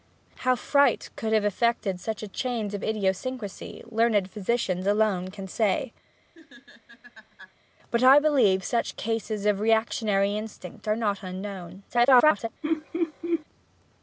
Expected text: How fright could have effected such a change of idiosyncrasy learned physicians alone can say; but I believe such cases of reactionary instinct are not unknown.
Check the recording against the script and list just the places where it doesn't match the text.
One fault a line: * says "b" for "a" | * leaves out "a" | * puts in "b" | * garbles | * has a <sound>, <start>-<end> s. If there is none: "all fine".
* has a laugh, 6.3-7.5 s
* garbles
* has a laugh, 12.6-13.4 s